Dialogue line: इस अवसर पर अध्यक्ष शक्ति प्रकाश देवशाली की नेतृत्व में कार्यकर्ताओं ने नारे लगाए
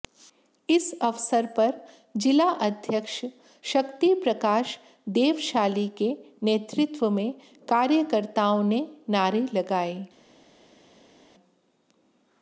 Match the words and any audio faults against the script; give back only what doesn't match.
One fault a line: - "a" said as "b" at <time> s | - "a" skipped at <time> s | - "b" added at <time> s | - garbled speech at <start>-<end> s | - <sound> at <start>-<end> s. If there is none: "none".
- "जिला" added at 2.2 s
- "की" said as "के" at 6.0 s